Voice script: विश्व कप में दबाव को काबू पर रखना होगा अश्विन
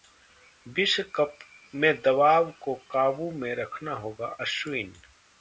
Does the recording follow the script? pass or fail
fail